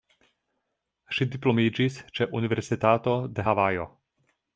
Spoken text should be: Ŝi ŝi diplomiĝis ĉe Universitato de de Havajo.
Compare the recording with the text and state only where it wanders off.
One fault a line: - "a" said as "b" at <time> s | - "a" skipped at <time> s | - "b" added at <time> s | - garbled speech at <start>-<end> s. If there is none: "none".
- "ŝi" skipped at 1.3 s
- "de" skipped at 3.5 s